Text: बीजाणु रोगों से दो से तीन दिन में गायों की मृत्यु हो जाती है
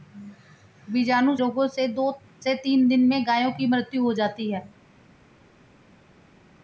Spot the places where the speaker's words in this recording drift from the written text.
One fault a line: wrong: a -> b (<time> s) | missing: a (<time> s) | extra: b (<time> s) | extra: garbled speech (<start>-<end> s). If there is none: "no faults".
no faults